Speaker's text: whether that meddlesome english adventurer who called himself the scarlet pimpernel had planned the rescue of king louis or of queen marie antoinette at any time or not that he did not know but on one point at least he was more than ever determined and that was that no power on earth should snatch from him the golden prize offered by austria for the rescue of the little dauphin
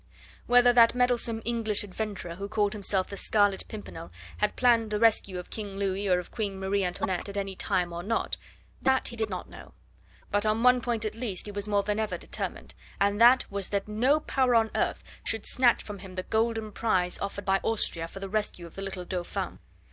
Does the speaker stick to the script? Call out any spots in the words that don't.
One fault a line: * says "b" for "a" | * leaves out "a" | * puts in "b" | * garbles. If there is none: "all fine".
all fine